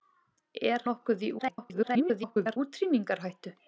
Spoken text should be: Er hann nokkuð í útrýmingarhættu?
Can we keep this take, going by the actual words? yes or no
no